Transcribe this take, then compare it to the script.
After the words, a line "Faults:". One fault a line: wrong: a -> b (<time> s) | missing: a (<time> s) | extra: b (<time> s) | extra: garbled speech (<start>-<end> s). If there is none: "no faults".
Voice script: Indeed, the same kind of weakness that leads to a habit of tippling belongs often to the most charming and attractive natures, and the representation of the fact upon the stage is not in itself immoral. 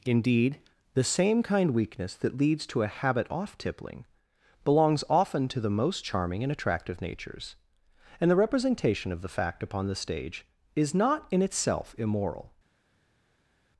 Indeed, the same kind weakness that leads to a habit off tippling belongs often to the most charming and attractive natures, and the representation of the fact upon the stage is not in itself immoral.
Faults:
missing: of (1.7 s)
wrong: of -> off (3.3 s)